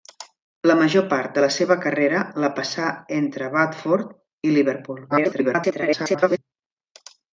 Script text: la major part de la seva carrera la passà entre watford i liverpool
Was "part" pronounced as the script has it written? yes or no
yes